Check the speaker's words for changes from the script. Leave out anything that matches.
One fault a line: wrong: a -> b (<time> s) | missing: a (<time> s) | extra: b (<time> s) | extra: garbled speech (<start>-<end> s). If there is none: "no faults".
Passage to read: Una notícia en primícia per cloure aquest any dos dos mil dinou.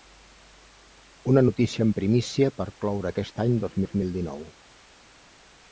no faults